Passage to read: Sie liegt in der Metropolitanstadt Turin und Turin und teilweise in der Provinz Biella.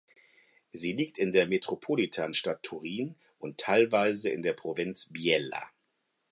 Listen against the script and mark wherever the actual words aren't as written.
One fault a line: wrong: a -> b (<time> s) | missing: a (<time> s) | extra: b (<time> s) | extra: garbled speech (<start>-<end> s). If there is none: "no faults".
missing: Turin und (3.6 s)